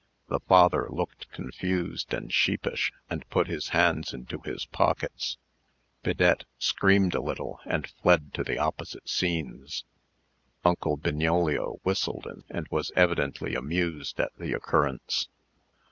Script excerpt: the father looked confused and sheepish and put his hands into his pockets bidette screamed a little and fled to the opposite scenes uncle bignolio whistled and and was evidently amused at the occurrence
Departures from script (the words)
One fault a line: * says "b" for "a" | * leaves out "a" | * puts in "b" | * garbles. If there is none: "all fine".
all fine